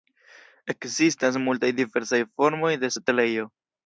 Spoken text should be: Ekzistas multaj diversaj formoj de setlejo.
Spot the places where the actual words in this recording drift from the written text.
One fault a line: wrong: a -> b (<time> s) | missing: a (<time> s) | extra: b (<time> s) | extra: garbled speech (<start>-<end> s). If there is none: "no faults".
no faults